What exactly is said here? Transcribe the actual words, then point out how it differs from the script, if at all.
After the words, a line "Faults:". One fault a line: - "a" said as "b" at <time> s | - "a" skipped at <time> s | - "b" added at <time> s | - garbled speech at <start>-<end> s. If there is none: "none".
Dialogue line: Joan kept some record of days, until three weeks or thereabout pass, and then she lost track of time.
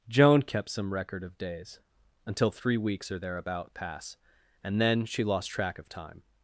Joan kept some record of days, until three weeks or thereabout pass, and then she lost track of time.
Faults:
none